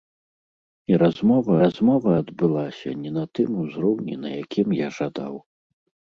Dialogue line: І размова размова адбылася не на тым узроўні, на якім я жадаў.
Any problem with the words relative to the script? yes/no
no